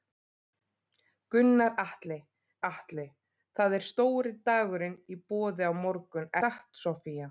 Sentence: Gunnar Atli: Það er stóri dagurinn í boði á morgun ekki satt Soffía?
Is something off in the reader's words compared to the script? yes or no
yes